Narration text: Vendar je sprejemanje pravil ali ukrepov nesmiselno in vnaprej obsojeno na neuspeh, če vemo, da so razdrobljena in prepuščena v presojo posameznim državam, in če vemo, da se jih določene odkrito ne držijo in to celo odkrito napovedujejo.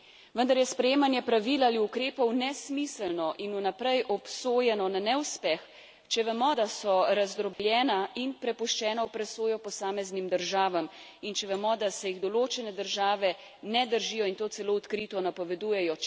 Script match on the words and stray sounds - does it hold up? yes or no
no